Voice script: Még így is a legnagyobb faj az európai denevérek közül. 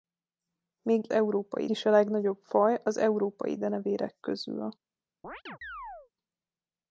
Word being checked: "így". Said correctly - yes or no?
no